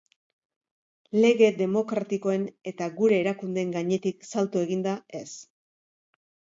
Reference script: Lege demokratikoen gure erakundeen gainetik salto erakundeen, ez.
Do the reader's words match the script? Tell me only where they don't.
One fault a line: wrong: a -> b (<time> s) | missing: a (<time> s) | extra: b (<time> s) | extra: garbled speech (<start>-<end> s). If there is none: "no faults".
extra: eta (2.7 s)
wrong: erakundeen -> eginda (4.7 s)